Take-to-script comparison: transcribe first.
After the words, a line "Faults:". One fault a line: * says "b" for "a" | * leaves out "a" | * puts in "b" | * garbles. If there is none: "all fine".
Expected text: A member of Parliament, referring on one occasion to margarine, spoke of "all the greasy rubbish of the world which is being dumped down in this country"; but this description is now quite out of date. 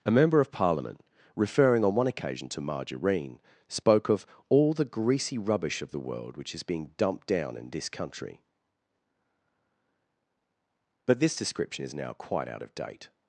A member of Parliament, referring on one occasion to margarine, spoke of "all the greasy rubbish of the world which is being dumped down in this country"; but this description is now quite out of date.
Faults:
all fine